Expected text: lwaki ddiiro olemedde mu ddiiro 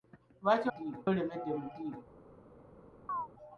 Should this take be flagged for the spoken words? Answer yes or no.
no